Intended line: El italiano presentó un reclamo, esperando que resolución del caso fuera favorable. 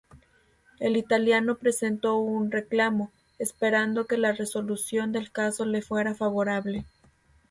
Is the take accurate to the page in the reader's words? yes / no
no